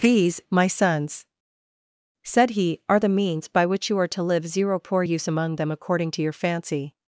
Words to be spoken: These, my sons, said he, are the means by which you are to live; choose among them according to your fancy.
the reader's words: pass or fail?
fail